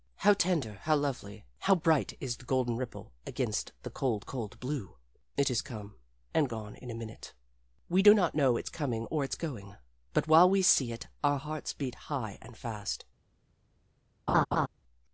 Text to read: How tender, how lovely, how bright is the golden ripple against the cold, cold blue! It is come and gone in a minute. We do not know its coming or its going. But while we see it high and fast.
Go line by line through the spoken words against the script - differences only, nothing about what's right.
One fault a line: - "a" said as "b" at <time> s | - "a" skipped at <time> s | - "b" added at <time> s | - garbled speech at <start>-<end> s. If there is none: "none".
- "our hearts beat" added at 11.2 s